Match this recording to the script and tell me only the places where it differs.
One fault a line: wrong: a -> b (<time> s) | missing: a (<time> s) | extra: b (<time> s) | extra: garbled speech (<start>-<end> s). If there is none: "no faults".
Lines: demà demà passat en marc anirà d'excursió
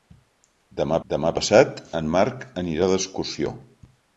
no faults